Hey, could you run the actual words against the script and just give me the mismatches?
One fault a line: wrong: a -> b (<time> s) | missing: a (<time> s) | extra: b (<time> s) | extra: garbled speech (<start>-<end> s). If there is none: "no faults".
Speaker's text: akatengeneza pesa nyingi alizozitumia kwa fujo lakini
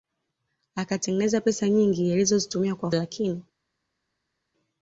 missing: fujo (2.9 s)